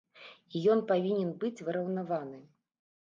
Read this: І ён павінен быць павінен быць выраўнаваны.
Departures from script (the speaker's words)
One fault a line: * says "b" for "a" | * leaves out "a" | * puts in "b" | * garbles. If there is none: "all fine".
* leaves out "павінен быць"